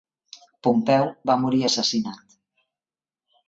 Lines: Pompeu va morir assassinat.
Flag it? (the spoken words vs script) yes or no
no